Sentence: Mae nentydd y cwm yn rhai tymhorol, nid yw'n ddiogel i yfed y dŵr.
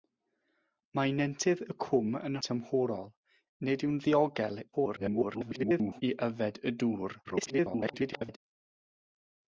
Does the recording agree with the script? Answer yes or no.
no